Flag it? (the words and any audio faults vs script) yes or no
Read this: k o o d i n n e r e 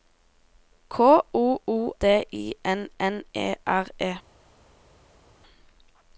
no